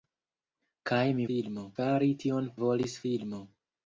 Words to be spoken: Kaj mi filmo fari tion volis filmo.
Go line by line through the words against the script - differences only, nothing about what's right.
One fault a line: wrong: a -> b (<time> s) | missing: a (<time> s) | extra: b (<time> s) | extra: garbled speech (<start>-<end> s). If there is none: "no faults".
no faults